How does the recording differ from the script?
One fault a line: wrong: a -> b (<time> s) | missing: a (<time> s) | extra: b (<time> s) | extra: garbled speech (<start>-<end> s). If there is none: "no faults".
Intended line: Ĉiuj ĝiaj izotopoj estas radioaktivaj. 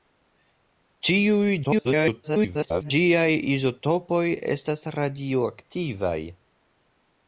extra: garbled speech (1.6-2.9 s)